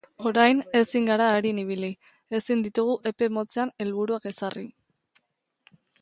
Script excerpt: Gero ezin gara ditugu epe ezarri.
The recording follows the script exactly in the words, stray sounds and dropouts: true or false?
false